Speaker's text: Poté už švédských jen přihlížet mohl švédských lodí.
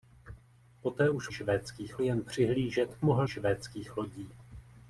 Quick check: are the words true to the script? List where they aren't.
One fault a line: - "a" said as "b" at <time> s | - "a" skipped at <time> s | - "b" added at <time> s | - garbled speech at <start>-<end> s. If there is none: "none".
none